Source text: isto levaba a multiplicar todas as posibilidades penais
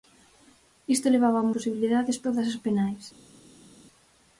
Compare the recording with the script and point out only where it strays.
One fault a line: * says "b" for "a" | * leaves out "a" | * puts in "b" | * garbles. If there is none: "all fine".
* says "posibilidades" for "multiplicar"
* leaves out "posibilidades"